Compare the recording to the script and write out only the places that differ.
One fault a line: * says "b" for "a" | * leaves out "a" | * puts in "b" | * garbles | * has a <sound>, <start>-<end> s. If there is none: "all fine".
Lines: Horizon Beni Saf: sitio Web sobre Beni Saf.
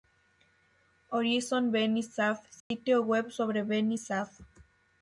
* has a dropout, 2.6-2.7 s